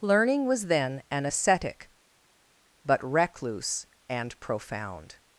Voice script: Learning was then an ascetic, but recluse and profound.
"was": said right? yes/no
yes